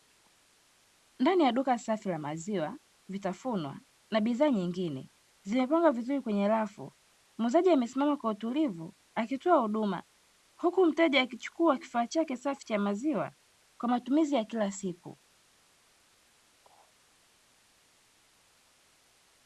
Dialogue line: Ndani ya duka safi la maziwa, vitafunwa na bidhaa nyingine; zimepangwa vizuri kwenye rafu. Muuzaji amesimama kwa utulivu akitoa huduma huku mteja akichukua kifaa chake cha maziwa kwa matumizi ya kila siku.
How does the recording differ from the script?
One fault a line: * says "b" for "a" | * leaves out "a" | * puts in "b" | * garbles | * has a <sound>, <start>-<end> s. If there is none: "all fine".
* puts in "safi"